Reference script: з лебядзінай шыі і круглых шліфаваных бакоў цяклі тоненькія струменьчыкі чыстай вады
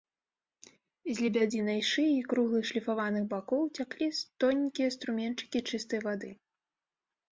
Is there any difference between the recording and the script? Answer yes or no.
no